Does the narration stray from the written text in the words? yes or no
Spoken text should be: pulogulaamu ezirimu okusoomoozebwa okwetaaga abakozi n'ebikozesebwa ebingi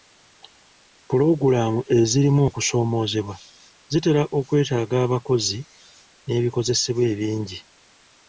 yes